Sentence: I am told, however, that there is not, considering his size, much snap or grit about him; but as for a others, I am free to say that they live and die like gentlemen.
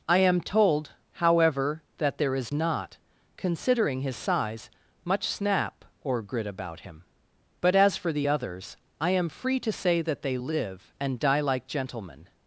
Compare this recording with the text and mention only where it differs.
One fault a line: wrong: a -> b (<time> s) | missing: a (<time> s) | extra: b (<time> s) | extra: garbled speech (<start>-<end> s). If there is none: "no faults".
wrong: a -> the (8.1 s)